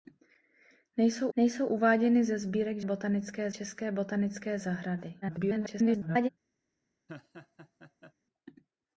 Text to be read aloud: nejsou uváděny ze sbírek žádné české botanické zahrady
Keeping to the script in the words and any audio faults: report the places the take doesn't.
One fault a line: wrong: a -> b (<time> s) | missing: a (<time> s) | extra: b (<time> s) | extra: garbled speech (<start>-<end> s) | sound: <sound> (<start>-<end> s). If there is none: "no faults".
extra: nejsou (1.4 s)
wrong: žádné -> botanické (2.8 s)
extra: garbled speech (5.2-6.3 s)
sound: laugh (7.1-8.1 s)